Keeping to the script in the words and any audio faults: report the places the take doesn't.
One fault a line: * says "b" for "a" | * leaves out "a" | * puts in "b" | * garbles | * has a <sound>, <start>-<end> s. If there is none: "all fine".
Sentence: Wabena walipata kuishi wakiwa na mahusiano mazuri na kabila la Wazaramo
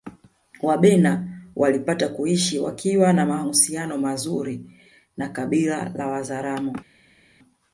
all fine